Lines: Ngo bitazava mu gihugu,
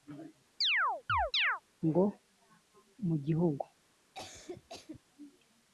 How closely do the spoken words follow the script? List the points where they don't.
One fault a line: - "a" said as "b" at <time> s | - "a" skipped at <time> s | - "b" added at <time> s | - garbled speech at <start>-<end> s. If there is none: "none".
- "bitazava" skipped at 2.0 s